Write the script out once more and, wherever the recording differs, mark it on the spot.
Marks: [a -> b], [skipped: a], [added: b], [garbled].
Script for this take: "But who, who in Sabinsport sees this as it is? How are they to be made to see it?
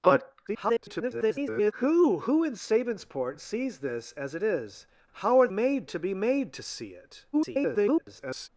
"But [garbled] who, who in Sabinsport sees this as it is? How are [they -> made] to be made to see it? [garbled]